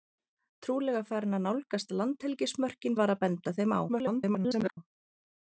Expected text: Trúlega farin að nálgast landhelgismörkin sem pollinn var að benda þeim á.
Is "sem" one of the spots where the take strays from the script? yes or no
yes